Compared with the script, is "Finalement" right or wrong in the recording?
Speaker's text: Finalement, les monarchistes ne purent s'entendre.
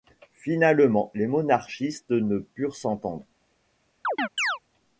right